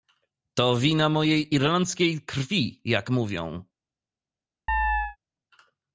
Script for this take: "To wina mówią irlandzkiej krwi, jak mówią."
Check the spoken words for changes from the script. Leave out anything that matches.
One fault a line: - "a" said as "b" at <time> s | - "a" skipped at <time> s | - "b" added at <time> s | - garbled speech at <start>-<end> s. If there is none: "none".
- "mówią" said as "mojej" at 1.1 s